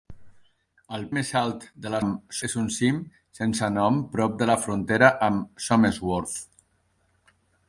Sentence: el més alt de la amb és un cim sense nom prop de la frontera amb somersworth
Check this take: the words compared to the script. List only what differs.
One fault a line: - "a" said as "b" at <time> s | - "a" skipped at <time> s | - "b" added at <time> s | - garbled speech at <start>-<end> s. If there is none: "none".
none